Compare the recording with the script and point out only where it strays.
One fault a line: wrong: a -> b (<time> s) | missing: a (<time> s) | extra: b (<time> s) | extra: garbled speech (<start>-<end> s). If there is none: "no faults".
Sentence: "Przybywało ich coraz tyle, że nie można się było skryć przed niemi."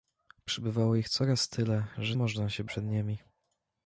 missing: nie (2.1 s)
missing: było skryć (2.6 s)